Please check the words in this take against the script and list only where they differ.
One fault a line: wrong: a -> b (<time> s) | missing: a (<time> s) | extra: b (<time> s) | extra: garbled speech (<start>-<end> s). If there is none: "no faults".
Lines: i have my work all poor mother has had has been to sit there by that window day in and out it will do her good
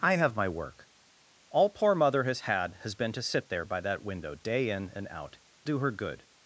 missing: it will (5.4 s)